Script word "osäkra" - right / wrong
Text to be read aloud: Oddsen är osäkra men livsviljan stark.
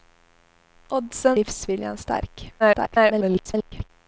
wrong